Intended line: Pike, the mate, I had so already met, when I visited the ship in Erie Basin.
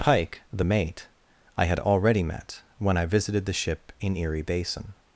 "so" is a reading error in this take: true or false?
true